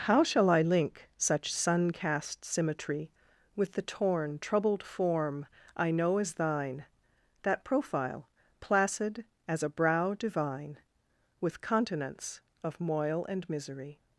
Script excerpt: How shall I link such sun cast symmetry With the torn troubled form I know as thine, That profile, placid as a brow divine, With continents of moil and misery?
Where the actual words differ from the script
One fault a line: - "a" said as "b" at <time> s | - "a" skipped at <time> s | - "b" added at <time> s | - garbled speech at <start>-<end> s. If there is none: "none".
none